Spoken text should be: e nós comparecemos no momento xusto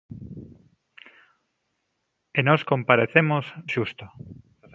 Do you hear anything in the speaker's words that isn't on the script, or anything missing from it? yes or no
yes